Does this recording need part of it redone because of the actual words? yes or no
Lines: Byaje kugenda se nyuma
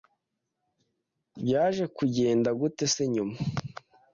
yes